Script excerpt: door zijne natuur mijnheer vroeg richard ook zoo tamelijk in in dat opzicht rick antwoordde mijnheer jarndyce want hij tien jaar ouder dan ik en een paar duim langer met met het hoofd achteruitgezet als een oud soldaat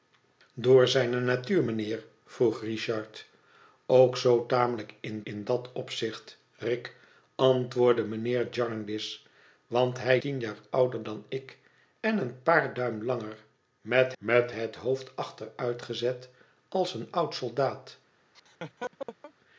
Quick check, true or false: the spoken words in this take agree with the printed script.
true